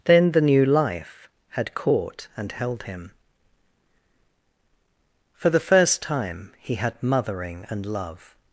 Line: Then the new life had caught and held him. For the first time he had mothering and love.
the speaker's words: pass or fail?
pass